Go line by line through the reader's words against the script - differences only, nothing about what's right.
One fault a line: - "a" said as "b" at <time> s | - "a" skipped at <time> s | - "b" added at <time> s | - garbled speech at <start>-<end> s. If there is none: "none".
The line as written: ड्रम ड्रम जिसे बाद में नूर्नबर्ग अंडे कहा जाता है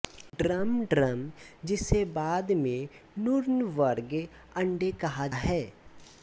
- "जाता" skipped at 5.3 s